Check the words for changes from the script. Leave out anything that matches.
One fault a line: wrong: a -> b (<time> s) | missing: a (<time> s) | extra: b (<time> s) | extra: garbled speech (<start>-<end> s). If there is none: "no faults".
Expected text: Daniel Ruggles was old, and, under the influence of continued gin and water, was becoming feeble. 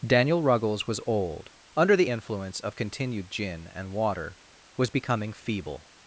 missing: and (1.5 s)